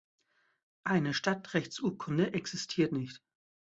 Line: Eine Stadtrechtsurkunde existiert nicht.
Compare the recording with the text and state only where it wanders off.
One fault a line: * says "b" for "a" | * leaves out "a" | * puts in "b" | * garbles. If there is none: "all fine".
all fine